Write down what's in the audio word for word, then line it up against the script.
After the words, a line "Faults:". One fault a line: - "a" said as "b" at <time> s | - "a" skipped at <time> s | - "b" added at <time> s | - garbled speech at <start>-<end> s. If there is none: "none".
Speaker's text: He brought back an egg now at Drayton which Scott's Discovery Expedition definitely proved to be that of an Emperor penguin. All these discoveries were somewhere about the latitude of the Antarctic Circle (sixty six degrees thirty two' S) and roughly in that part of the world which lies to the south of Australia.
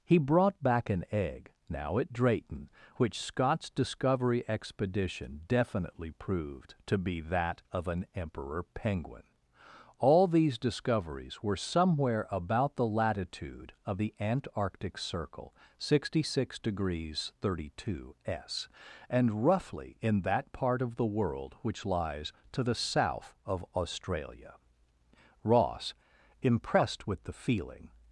He brought back an egg now at Drayton which Scott's Discovery Expedition definitely proved to be that of an Emperor penguin. All these discoveries were somewhere about the latitude of the Antarctic Circle (sixty six degrees thirty two' S) and roughly in that part of the world which lies to the south of Australia. Ross, "impressed with the feeling
Faults:
- "Ross impressed with the feeling" added at 25.4 s